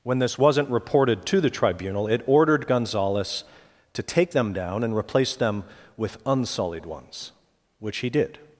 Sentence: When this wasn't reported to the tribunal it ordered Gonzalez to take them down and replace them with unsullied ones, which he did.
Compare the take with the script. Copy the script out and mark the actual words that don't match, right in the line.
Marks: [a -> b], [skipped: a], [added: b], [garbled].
When this wasn't reported to the tribunal it ordered Gonzalez to take them down and replace them with unsullied ones, which he did.